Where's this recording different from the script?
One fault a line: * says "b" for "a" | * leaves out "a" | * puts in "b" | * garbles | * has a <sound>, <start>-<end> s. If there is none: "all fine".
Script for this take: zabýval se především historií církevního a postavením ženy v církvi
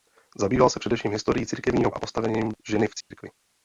* has a dropout, 3.0-3.1 s